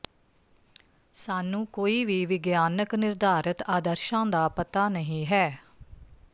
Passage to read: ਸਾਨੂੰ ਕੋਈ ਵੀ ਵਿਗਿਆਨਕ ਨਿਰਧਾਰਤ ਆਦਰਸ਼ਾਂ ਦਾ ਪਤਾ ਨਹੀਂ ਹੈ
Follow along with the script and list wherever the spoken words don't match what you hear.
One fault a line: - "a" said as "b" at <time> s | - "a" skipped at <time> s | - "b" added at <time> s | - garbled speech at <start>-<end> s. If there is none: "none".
none